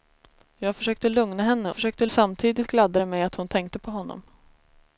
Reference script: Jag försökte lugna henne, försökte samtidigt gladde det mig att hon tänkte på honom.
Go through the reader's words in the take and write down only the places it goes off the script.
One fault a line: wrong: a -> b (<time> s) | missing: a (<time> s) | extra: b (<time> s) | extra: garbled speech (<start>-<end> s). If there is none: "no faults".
no faults